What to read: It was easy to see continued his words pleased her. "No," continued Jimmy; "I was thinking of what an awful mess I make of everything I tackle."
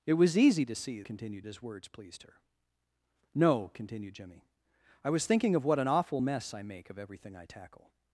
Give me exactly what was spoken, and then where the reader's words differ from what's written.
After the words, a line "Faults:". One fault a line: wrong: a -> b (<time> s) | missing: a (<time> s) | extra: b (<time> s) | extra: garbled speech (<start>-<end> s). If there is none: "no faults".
It was easy to see continued his words pleased her. "No," continued Jimmy; "I was thinking of what an awful mess I make of everything I tackle."
Faults:
no faults